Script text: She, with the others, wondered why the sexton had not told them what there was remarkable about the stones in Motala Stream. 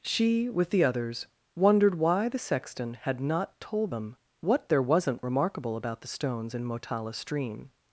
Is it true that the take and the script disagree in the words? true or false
true